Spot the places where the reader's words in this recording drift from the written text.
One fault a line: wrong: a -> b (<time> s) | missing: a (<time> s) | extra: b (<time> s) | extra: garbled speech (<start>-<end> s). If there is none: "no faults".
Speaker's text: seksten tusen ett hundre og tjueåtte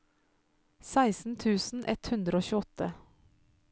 no faults